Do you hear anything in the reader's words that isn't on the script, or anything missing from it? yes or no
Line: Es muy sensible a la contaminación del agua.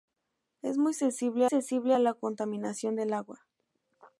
yes